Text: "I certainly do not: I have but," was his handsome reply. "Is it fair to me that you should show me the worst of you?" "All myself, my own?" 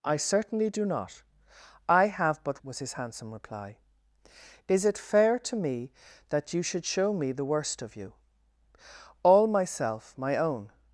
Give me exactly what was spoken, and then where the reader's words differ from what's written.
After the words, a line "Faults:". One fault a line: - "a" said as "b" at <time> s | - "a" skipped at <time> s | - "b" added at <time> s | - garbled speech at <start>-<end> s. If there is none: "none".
"I certainly do not: I have but," was his handsome reply. "Is it fair to me that you should show me the worst of you?" "All myself, my own?"
Faults:
none